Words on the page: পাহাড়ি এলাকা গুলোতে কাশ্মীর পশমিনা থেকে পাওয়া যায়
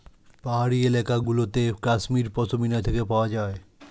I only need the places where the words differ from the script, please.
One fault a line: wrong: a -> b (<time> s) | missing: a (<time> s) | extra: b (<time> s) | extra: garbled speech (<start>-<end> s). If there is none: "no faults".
no faults